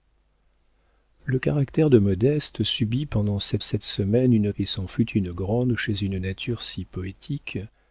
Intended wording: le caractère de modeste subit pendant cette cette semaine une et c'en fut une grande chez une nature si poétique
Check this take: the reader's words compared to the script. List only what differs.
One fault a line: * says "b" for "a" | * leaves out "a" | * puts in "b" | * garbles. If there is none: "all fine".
all fine